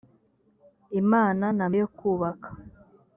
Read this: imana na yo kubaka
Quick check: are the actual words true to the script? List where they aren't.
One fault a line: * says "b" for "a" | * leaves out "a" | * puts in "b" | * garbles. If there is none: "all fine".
all fine